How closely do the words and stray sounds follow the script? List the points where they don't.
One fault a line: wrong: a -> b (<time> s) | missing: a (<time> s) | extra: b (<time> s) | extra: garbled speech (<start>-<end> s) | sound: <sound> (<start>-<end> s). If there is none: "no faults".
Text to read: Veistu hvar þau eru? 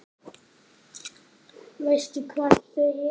no faults